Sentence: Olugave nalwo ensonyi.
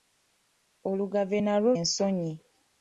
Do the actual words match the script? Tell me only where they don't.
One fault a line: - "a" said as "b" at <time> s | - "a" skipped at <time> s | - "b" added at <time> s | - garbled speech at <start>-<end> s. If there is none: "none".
none